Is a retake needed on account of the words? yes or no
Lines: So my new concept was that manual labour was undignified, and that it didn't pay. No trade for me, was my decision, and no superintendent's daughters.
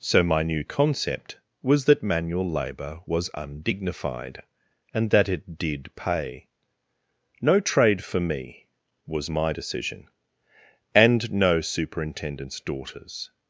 yes